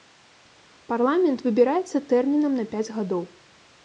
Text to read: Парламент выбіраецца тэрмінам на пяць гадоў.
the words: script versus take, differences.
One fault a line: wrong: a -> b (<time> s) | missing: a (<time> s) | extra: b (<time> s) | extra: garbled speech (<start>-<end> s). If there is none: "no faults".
no faults